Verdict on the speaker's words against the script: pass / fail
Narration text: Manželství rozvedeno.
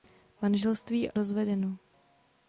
pass